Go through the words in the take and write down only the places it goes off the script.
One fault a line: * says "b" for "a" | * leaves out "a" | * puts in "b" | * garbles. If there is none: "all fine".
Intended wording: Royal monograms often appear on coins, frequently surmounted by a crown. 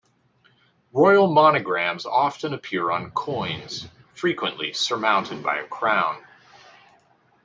all fine